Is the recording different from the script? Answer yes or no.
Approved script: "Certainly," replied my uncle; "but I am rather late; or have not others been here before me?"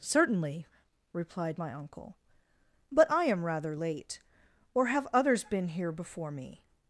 yes